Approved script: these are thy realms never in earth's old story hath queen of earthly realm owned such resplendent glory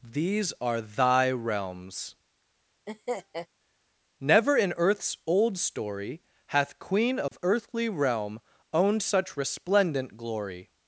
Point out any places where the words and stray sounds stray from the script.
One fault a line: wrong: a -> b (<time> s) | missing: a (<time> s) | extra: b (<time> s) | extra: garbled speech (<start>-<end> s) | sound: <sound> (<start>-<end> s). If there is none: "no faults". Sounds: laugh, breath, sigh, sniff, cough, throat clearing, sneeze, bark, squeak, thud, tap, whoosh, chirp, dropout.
sound: laugh (2.9-3.5 s)
sound: dropout (7.3-7.3 s)